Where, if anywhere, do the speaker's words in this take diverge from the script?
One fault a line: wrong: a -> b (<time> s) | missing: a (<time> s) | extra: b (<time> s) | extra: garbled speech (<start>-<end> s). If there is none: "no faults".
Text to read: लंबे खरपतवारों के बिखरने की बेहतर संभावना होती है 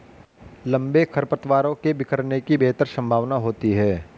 no faults